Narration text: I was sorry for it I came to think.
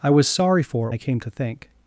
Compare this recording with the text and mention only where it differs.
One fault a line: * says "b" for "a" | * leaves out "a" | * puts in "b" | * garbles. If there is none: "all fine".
all fine